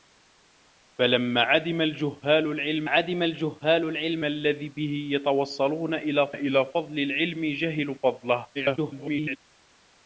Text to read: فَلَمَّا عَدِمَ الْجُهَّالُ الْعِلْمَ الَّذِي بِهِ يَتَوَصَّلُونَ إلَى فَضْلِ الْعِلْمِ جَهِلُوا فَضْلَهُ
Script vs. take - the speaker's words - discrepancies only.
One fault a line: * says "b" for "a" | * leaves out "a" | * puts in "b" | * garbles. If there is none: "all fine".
* puts in "عَدِمَ الْجُهَّالُ الْعِلْمَ"
* puts in "إلَى"
* garbles